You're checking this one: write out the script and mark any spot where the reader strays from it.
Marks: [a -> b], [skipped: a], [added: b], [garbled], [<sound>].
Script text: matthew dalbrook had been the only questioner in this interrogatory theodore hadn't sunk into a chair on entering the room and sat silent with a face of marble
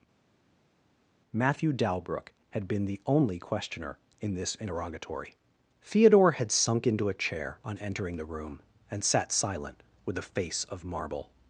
matthew dalbrook had been the only questioner in this interrogatory theodore [hadn't -> had] sunk into a chair on entering the room and sat silent with a face of marble